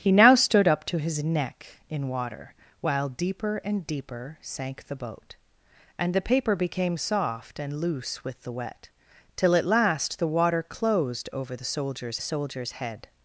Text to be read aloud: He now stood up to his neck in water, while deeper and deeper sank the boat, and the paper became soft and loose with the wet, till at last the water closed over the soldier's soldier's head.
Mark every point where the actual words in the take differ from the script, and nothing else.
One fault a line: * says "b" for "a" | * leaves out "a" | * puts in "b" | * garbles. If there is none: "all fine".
all fine